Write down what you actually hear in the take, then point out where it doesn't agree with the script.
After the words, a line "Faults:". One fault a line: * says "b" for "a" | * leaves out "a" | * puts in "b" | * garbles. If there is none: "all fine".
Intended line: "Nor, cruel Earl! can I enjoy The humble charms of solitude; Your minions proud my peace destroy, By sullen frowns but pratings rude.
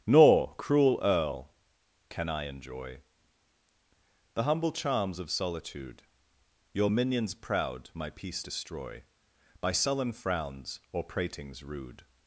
"Nor, cruel Earl! can I enjoy The humble charms of solitude; Your minions proud my peace destroy, By sullen frowns or pratings rude.
Faults:
* says "or" for "but"